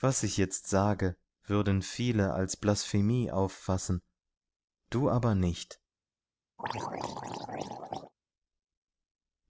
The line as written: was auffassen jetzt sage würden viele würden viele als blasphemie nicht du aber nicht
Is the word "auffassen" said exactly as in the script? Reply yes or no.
no